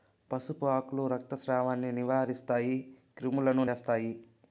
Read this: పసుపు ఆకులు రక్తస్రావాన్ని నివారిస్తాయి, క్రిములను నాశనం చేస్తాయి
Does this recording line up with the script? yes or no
no